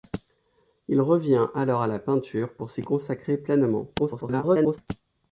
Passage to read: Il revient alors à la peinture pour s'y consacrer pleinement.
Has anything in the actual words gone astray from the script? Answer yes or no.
yes